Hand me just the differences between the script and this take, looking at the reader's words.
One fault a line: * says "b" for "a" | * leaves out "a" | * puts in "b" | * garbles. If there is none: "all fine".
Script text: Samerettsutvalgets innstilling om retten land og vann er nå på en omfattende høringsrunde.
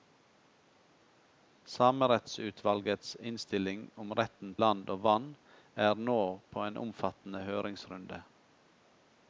all fine